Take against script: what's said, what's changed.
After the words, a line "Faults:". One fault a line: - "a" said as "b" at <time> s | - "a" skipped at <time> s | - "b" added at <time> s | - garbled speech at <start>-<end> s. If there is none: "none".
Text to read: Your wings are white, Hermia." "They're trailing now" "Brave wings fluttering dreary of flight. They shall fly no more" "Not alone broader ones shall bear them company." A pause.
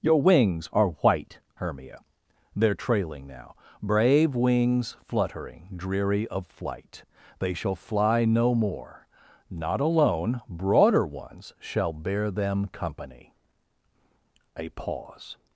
Your wings are white, Hermia." "They're trailing now" "Brave wings fluttering dreary of flight. They shall fly no more" "Not alone broader ones shall bear them company." A pause.
Faults:
none